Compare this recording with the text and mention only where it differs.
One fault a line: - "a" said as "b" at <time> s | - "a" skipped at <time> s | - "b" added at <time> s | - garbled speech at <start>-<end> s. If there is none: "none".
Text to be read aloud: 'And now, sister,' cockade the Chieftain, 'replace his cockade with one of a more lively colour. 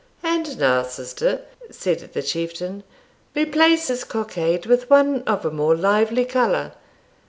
- "cockade" said as "said" at 1.7 s